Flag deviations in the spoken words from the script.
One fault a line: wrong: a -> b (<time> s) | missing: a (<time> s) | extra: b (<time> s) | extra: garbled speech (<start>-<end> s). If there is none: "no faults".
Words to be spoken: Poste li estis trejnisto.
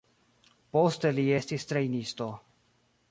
no faults